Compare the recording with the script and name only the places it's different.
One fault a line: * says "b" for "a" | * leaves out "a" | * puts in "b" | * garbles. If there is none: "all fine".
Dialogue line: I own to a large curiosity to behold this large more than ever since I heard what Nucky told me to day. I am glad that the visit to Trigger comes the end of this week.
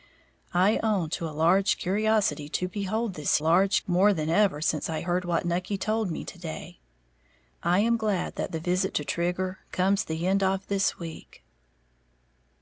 all fine